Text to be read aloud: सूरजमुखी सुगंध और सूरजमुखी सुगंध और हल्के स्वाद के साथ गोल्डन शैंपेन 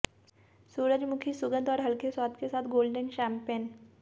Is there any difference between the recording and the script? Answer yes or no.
yes